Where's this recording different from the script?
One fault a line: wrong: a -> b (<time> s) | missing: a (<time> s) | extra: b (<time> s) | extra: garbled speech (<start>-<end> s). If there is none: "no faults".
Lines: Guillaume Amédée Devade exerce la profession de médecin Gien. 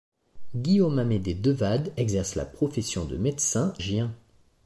no faults